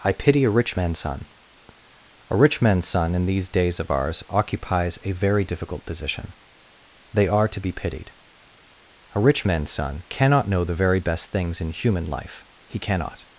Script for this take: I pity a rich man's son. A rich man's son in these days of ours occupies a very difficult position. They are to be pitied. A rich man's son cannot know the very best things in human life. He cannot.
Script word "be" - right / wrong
right